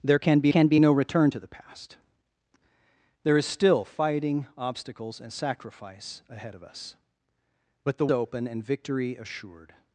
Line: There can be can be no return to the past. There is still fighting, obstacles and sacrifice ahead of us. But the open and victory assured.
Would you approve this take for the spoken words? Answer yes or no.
yes